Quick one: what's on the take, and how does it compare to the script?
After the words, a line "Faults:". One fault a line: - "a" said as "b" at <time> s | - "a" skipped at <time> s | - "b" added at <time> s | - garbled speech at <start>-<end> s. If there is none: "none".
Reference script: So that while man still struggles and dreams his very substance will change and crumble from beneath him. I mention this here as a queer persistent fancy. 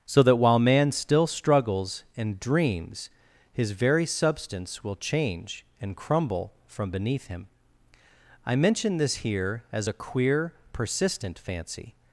So that while man still struggles and dreams his very substance will change and crumble from beneath him. I mention this here as a queer persistent fancy.
Faults:
none